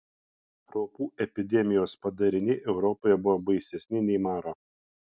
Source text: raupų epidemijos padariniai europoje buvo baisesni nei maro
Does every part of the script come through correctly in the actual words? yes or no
yes